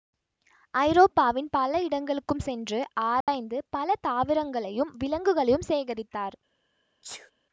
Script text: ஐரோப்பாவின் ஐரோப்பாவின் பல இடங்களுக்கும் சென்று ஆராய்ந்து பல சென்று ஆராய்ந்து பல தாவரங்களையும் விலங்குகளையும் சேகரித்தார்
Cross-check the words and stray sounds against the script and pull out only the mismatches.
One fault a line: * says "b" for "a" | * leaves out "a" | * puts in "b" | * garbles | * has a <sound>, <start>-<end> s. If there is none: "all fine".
* leaves out "ஐரோப்பாவின்"
* has a dropout, 3.2-3.3 s
* leaves out "சென்று ஆராய்ந்து பல"
* has a sneeze, 7.0-7.3 s